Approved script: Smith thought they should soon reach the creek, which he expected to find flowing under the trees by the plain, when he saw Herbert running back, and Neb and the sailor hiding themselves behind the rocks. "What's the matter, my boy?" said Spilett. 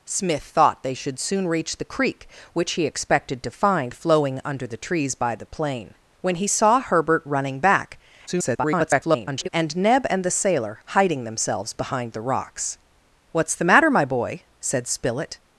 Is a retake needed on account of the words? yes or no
yes